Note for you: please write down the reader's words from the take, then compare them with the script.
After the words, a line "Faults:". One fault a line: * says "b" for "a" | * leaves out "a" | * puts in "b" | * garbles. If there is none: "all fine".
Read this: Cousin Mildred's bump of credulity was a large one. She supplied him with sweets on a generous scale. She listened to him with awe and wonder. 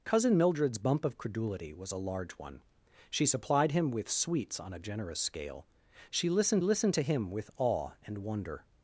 Cousin Mildred's bump of credulity was a large one. She supplied him with sweets on a generous scale. She listened listened to him with awe and wonder.
Faults:
* puts in "listened"